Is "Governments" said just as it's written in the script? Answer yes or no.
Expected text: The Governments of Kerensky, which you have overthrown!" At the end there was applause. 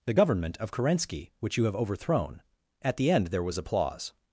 no